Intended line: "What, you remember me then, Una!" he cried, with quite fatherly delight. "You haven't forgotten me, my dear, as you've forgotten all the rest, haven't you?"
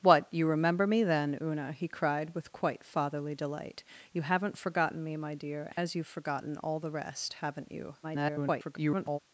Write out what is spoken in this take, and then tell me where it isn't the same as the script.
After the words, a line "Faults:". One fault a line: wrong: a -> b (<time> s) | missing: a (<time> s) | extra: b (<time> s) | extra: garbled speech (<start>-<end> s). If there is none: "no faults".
"What, you remember me then, Una!" he cried, with quite fatherly delight. "You haven't forgotten me, my dear, as you've forgotten all the rest, haven't you?" [garbled]
Faults:
extra: garbled speech (8.0-9.2 s)